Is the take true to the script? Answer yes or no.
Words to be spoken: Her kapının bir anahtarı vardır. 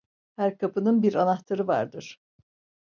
yes